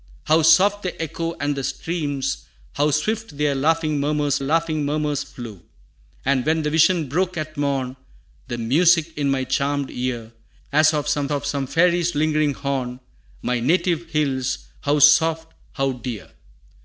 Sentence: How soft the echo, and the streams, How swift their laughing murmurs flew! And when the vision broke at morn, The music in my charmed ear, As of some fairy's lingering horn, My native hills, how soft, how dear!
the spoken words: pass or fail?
fail